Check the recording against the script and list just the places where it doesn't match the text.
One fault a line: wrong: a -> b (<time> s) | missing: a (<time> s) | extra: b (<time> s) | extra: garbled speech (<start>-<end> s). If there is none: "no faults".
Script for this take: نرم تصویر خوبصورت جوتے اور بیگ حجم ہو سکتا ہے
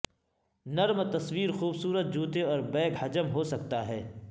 no faults